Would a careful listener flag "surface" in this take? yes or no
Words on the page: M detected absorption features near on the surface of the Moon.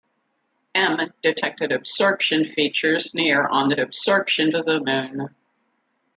yes